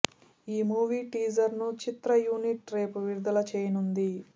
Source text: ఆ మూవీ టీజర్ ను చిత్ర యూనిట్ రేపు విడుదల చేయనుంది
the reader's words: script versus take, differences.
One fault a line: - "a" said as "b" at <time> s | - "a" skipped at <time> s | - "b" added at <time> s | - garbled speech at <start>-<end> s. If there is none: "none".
- "ఆ" said as "ఈ" at 0.5 s